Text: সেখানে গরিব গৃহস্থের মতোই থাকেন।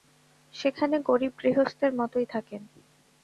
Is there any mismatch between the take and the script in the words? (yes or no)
no